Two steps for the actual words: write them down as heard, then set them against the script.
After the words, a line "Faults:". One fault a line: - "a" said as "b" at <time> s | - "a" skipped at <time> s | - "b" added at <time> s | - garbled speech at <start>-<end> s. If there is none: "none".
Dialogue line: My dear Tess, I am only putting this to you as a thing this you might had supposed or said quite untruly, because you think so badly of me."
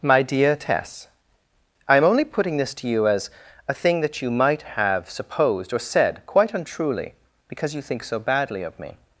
My dear Tess, I am only putting this to you as a thing that you might have supposed or said quite untruly, because you think so badly of me."
Faults:
- "this" said as "that" at 4.0 s
- "had" said as "have" at 4.6 s